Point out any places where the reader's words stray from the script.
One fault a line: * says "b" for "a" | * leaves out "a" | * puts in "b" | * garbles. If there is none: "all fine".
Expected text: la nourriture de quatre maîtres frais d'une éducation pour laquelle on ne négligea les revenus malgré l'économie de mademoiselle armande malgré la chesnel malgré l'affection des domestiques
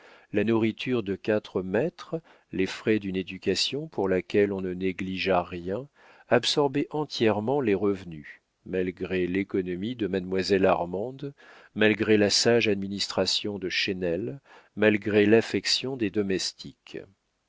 * puts in "les"
* puts in "rien absorbaient entièrement"
* puts in "sage administration de"